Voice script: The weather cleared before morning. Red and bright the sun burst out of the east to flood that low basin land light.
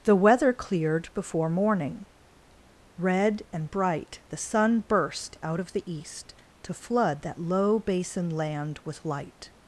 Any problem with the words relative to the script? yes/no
yes